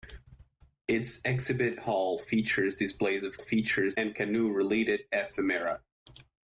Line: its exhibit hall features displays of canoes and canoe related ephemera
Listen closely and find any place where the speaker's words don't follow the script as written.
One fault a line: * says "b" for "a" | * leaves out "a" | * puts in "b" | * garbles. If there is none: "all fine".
* says "features" for "canoes"